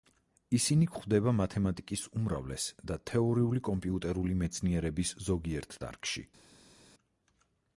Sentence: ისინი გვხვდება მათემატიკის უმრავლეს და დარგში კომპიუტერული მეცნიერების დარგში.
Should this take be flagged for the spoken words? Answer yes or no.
yes